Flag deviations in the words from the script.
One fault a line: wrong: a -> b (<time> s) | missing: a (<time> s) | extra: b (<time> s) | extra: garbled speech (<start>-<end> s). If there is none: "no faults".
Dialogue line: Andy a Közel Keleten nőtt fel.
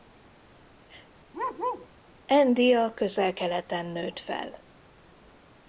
no faults